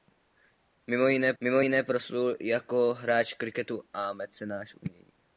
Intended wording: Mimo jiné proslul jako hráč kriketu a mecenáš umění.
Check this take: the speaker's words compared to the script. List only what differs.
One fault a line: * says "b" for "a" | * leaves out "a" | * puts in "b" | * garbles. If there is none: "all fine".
* puts in "mimo jiné"